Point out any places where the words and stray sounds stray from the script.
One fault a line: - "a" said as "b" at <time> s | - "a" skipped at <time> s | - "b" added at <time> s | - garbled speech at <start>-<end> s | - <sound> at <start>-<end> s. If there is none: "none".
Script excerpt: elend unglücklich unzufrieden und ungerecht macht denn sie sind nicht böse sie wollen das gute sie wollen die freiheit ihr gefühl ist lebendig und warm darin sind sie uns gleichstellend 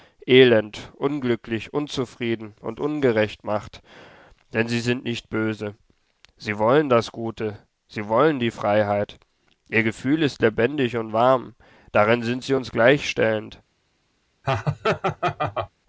- laugh at 14.4-15.7 s